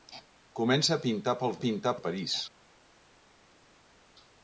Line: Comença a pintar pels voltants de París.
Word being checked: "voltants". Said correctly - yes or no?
no